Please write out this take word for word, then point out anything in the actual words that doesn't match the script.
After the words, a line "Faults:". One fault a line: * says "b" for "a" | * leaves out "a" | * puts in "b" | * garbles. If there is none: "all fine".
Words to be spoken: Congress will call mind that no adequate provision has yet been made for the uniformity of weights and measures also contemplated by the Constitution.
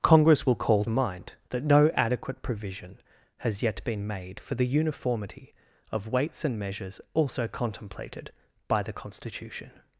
Congress will call mind that no adequate provision has yet been made for the uniformity of weights and measures also contemplated by the Constitution.
Faults:
all fine